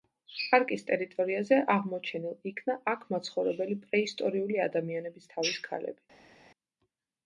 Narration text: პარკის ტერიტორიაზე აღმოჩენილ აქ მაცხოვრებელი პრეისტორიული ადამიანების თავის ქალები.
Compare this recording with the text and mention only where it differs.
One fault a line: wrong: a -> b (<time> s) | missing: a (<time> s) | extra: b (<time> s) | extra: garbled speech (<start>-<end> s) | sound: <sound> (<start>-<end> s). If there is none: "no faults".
extra: იქნა (2.5 s)